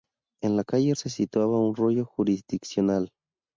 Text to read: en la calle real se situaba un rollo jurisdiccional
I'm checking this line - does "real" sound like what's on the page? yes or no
no